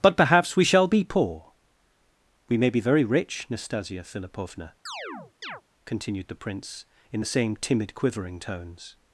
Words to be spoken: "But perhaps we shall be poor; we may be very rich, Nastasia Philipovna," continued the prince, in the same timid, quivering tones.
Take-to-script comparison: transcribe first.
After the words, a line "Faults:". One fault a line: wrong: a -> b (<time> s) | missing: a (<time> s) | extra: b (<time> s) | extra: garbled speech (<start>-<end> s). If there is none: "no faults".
"But perhaps we shall be poor; we may be very rich, Nastasia Philipovna," continued the prince, in the same timid, quivering tones.
Faults:
no faults